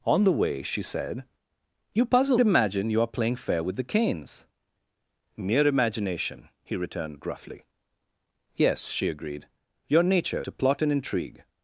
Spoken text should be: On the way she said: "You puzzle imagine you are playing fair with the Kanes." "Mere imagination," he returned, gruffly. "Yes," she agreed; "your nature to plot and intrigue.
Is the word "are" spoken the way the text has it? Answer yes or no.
yes